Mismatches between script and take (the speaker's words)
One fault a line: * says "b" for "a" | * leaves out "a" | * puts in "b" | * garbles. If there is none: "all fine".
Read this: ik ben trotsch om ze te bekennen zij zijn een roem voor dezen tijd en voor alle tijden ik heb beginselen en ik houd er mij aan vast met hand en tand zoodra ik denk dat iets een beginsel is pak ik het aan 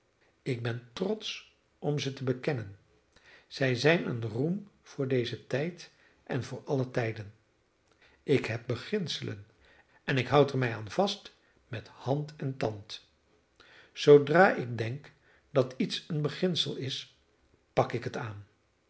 all fine